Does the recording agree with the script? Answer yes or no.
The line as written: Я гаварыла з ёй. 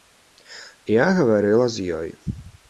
yes